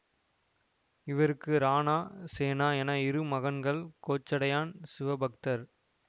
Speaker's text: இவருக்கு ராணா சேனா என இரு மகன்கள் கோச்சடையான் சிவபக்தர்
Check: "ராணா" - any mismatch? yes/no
no